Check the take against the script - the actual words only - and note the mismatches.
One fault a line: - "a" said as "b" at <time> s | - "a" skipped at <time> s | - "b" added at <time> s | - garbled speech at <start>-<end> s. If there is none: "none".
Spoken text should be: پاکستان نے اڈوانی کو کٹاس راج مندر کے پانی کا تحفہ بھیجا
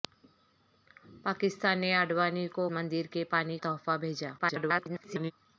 - "کٹاس راج" skipped at 2.6 s
- "کا" skipped at 3.6 s
- garbled speech at 4.4-5.3 s